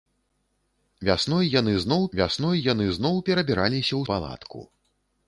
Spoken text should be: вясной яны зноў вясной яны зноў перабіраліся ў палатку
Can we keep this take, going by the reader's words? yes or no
yes